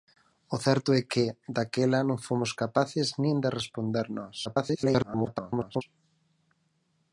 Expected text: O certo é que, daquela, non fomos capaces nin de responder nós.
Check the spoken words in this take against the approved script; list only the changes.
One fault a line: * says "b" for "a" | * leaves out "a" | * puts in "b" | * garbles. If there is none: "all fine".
* garbles